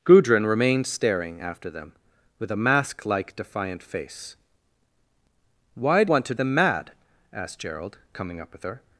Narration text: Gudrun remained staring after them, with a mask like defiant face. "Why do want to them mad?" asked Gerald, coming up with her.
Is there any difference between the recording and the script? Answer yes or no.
no